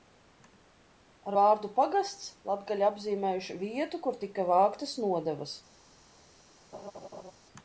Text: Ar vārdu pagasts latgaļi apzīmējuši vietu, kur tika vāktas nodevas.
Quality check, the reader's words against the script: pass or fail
pass